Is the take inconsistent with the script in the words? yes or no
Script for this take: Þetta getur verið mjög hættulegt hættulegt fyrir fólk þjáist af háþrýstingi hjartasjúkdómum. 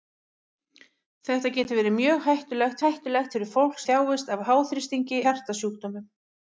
no